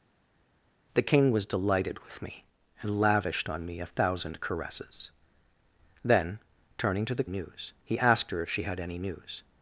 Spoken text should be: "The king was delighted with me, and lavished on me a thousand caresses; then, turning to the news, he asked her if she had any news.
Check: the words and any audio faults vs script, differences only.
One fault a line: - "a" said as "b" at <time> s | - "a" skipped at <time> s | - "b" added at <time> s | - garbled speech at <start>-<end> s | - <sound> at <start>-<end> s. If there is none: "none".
none